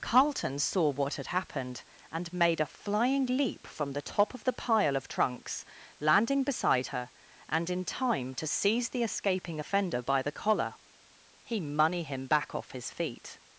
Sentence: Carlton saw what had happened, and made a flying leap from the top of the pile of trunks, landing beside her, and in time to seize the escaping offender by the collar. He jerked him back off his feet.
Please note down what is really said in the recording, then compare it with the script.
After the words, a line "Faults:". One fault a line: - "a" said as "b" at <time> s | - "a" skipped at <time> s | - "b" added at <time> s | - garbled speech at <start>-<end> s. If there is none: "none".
Carlton saw what had happened, and made a flying leap from the top of the pile of trunks, landing beside her, and in time to seize the escaping offender by the collar. He money him back off his feet.
Faults:
- "jerked" said as "money" at 11.6 s